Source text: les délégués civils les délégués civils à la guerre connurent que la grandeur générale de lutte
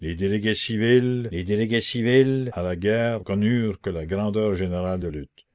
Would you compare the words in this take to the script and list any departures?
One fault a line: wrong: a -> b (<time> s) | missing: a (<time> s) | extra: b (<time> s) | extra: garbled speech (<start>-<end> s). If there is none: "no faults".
no faults